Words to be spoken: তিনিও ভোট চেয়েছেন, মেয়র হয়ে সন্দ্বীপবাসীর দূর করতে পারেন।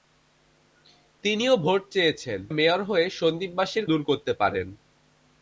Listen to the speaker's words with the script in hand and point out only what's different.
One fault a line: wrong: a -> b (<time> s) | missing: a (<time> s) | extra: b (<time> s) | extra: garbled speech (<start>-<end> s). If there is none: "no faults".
no faults